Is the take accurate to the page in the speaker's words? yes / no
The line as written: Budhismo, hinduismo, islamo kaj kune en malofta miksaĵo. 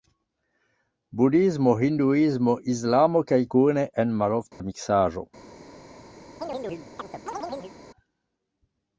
yes